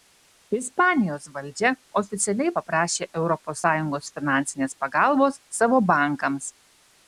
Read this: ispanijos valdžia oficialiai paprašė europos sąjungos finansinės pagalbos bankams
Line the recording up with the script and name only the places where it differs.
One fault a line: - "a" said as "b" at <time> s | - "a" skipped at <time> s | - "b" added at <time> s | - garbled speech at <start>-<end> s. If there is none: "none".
- "savo" added at 5.6 s